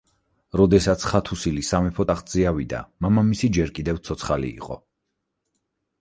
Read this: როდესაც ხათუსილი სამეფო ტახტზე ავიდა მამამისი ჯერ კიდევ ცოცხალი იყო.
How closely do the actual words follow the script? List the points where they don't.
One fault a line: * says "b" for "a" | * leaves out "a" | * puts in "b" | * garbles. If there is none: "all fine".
all fine